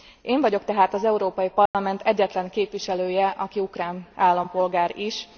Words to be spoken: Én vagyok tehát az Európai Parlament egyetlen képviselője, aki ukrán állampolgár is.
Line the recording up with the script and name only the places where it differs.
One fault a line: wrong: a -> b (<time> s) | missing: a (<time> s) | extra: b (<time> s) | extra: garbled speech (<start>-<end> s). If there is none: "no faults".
no faults